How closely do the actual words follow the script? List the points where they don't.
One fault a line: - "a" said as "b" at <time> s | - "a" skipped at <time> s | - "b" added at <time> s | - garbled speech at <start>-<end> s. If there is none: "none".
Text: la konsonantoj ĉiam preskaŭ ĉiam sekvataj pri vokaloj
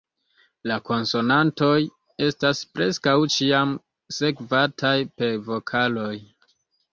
- "ĉiam" said as "estas" at 2.3 s
- "pri" said as "per" at 5.2 s